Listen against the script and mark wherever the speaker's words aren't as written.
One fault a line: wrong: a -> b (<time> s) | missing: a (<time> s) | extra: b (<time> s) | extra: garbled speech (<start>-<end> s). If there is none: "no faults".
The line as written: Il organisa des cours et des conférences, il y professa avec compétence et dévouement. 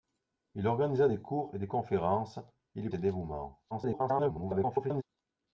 missing: professa avec compétence (2.9 s)
extra: garbled speech (3.7-5.0 s)